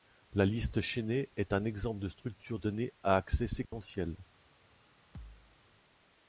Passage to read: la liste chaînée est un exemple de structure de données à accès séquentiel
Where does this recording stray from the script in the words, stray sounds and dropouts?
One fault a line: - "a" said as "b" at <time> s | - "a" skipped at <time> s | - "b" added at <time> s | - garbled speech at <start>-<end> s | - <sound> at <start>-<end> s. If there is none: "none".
- "de" skipped at 2.6 s
- dropout at 3.6-3.7 s
- thud at 5.1-5.6 s